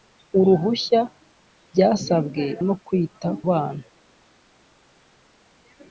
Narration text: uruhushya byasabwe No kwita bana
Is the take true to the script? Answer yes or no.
yes